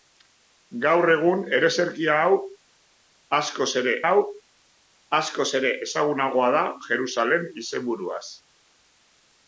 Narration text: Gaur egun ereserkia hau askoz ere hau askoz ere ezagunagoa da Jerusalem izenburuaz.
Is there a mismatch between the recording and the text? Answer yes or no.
no